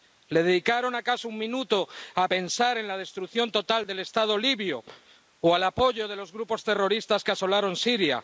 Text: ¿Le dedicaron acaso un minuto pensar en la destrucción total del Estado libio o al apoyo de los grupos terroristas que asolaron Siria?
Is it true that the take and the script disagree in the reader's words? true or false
true